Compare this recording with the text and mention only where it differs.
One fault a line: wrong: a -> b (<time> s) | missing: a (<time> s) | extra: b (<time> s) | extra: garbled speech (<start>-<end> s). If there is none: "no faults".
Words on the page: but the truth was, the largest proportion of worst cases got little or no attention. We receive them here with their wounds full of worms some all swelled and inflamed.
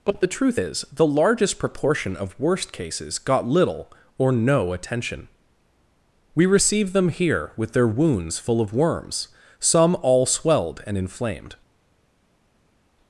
wrong: was -> is (0.6 s)